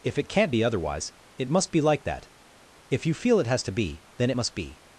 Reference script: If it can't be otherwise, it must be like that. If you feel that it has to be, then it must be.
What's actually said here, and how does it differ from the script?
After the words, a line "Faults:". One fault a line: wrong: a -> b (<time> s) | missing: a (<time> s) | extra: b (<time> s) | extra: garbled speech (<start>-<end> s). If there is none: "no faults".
If it can't be otherwise, it must be like that. If you feel it has to be, then it must be.
Faults:
missing: that (3.4 s)